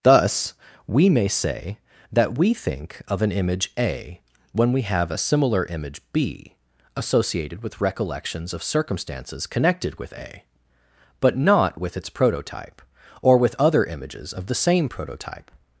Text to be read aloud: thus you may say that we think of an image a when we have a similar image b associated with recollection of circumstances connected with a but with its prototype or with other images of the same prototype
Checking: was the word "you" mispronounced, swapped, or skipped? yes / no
yes